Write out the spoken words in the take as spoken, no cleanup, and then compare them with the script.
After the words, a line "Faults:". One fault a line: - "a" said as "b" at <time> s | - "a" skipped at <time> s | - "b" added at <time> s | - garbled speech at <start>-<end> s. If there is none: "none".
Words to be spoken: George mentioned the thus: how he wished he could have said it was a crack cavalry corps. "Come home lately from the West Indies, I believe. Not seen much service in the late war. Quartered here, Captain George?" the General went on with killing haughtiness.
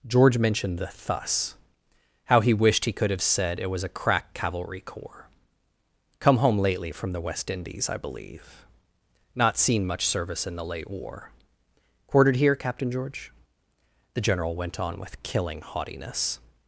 George mentioned the thus: how he wished he could have said it was a crack cavalry corps. "Come home lately from the West Indies, I believe. Not seen much service in the late war. Quartered here, Captain George?" the General went on with killing haughtiness.
Faults:
none